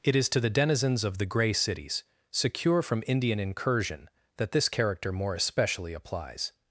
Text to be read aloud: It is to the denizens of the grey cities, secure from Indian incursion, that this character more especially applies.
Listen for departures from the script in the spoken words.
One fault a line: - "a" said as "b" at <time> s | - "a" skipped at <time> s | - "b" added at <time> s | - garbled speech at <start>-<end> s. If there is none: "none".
none